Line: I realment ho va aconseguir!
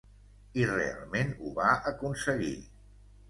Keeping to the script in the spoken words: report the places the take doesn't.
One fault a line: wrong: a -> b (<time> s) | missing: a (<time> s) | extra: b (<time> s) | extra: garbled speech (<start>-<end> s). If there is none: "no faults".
no faults